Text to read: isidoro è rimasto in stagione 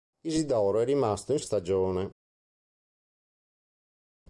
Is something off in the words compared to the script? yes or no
no